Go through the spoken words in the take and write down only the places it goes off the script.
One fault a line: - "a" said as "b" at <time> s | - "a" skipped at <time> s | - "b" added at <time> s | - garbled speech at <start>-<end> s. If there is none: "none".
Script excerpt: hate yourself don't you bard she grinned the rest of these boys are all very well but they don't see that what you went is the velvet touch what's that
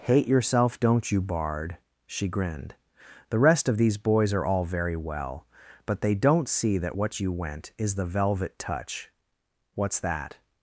none